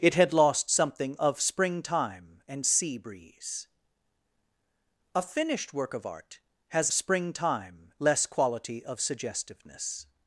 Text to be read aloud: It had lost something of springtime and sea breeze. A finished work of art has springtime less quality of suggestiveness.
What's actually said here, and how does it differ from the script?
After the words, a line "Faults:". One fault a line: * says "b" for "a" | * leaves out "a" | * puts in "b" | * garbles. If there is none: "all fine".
It had lost something of springtime and sea breeze. A finished work of art has springtime less quality of suggestiveness.
Faults:
all fine